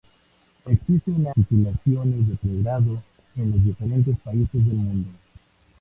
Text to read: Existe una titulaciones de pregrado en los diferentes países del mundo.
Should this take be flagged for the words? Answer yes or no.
no